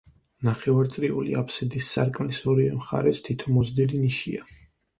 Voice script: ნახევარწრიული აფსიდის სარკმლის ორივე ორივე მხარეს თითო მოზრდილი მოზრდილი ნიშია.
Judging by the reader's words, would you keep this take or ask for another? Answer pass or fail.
fail